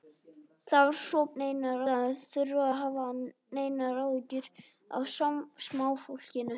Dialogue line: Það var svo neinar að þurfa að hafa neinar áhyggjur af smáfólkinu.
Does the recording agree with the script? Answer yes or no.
yes